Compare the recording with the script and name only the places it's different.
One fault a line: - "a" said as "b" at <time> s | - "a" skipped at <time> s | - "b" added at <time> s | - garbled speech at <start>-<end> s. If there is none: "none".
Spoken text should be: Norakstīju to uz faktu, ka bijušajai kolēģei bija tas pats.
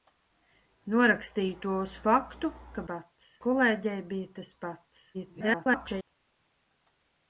- "bijušajai" said as "pats" at 2.9 s
- garbled speech at 5.1-6.1 s